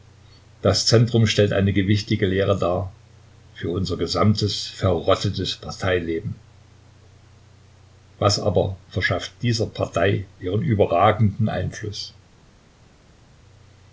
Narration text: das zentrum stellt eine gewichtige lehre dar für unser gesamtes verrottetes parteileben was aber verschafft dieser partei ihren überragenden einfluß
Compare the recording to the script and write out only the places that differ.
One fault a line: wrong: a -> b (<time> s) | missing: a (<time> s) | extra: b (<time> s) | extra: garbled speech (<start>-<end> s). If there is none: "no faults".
no faults